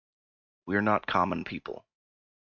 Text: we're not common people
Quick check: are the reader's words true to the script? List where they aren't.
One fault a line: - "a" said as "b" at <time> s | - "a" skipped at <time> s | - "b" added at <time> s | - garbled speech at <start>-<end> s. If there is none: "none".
none